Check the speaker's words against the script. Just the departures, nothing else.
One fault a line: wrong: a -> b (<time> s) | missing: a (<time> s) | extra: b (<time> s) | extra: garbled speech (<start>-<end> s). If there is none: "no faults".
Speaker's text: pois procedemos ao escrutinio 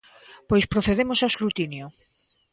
no faults